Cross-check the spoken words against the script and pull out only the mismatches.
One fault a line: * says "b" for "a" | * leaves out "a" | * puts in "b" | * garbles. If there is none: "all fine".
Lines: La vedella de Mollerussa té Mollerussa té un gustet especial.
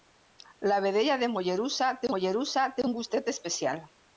all fine